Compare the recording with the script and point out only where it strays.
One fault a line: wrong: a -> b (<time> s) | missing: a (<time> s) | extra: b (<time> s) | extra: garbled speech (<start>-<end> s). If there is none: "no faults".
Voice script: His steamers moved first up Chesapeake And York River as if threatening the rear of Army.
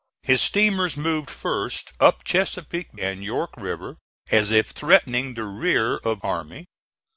no faults